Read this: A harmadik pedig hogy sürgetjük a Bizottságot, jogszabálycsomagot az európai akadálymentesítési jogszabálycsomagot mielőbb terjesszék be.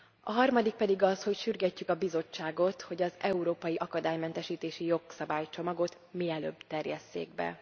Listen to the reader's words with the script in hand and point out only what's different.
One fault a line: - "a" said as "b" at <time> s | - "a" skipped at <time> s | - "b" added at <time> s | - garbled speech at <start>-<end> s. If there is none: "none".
- "az" added at 1.0 s
- "jogszabálycsomagot" said as "hogy" at 2.8 s